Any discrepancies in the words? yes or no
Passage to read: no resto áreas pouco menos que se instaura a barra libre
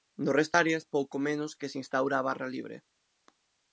no